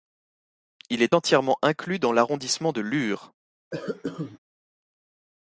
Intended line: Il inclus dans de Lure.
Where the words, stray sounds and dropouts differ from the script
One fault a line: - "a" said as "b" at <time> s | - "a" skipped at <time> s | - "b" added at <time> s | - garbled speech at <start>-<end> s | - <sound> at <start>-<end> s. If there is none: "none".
- "est entièrement" added at 1.0 s
- "l'arrondissement" added at 2.1 s
- cough at 3.7-4.4 s